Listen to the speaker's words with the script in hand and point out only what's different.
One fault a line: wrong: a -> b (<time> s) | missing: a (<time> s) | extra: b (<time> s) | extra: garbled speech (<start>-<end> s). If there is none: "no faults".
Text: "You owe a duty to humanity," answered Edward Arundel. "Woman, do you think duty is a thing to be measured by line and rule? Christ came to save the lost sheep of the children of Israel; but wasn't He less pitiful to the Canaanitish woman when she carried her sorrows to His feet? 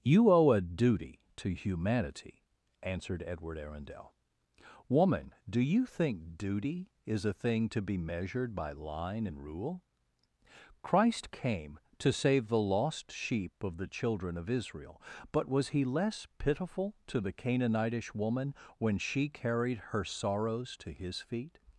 wrong: wasn't -> was (15.5 s)